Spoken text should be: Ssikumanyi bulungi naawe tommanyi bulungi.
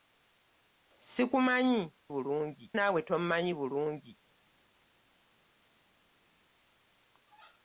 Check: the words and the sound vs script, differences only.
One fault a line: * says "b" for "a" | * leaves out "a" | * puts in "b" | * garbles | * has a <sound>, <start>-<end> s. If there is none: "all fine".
all fine